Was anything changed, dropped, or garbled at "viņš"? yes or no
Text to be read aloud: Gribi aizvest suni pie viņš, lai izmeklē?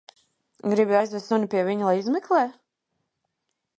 yes